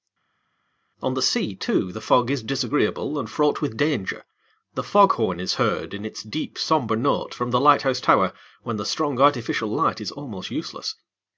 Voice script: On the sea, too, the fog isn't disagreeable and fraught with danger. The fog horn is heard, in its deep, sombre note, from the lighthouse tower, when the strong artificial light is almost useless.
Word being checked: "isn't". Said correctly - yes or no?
no